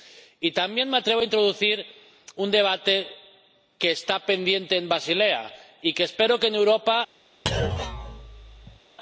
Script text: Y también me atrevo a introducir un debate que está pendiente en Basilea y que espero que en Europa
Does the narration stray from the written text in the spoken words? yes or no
no